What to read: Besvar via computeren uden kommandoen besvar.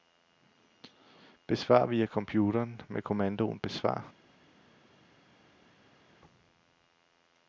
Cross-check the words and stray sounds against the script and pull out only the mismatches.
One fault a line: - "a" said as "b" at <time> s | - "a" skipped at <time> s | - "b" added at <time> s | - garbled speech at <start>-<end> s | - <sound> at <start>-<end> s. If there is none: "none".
- "uden" said as "med" at 2.9 s